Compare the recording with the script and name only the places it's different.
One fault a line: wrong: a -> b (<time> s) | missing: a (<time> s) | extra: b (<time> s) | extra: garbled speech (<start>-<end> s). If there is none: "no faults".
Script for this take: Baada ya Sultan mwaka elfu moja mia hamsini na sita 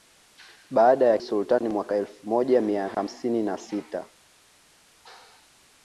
no faults